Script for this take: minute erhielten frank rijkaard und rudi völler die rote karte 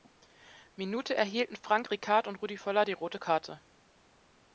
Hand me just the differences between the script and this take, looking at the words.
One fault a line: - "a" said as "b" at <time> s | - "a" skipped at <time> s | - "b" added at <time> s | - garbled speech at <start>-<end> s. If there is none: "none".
none